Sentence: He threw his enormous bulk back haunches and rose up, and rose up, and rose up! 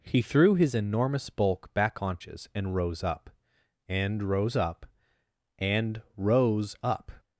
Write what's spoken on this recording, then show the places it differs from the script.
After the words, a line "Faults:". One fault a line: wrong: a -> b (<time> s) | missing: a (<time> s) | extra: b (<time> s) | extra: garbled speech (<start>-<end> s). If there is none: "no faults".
He threw his enormous bulk back haunches and rose up, and rose up, and rose up!
Faults:
no faults